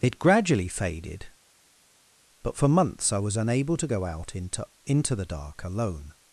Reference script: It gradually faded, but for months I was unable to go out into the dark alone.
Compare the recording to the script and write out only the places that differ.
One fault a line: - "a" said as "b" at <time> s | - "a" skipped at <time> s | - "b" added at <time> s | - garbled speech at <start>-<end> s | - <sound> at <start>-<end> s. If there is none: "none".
- "into" added at 4.8 s